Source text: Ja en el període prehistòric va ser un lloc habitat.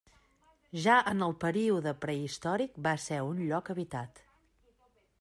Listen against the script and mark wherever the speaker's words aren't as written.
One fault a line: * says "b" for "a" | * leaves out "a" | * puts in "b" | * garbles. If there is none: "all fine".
all fine